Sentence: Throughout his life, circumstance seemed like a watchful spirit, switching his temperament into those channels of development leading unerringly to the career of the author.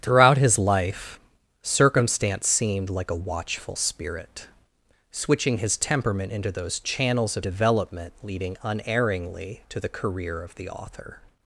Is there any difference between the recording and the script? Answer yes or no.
no